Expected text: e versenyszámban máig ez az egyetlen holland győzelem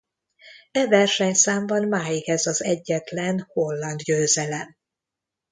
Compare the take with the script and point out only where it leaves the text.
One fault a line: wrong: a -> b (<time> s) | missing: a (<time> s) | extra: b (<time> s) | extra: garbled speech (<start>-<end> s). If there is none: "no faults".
no faults